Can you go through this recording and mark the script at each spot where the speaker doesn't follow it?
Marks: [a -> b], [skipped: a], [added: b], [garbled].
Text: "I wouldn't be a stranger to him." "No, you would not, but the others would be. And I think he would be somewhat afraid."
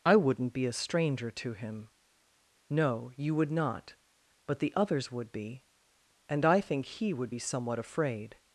"I wouldn't be a stranger to him." "No, you would not, but the others would be. And I think he would be somewhat afraid."